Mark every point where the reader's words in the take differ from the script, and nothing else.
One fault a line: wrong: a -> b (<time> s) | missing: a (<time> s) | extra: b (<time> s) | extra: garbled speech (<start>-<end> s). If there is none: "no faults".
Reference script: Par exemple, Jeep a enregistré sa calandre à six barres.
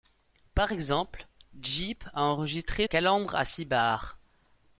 missing: sa (2.9 s)